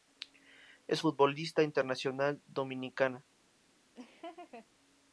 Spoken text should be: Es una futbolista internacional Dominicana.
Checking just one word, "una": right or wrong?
wrong